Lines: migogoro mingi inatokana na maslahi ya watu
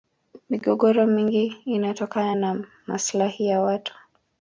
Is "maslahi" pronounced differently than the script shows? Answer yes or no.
no